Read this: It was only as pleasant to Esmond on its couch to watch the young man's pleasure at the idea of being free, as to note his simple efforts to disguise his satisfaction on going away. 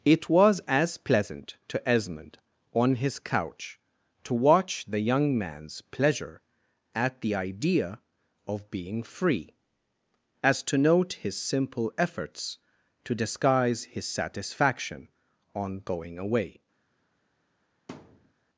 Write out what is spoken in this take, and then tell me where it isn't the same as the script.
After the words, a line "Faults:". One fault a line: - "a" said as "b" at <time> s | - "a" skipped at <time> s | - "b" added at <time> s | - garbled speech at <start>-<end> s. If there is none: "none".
It was as pleasant to Esmond on his couch to watch the young man's pleasure at the idea of being free, as to note his simple efforts to disguise his satisfaction on going away.
Faults:
- "only" skipped at 0.6 s
- "its" said as "his" at 3.0 s